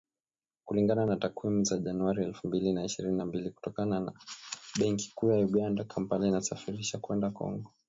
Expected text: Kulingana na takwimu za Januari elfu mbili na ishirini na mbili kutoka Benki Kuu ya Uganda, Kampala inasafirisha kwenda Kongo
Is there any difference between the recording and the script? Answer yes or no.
no